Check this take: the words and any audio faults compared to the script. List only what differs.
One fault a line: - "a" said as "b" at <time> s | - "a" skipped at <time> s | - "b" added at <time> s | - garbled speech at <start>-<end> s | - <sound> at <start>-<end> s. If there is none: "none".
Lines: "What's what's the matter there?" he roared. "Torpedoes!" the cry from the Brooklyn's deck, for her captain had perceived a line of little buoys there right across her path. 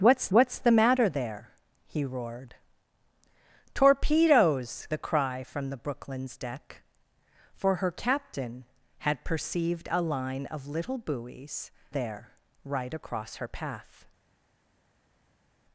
none